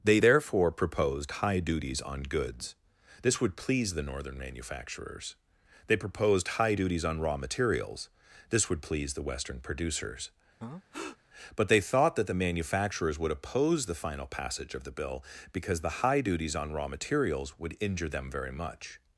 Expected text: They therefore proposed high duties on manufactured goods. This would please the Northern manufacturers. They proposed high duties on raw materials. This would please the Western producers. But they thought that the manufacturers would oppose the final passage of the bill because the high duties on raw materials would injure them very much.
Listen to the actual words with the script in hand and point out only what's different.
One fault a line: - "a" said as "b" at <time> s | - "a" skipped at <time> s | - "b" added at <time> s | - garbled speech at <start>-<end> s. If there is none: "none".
- "manufactured" skipped at 2.2 s